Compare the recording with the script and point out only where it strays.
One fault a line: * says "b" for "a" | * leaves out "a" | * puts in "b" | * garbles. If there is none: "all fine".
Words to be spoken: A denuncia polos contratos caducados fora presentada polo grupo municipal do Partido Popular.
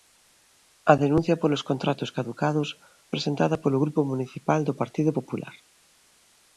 * leaves out "fora"